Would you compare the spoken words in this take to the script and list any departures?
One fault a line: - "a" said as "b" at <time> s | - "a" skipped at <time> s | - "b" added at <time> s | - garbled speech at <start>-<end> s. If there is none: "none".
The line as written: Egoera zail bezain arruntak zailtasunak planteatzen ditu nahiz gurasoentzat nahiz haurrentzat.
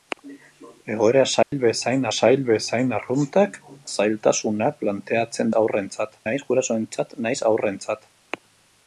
- "zail bezain" added at 2.2 s
- "ditu" said as "haurrentzat" at 5.6 s